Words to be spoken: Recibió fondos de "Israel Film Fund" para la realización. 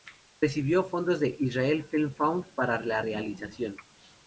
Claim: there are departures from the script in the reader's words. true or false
false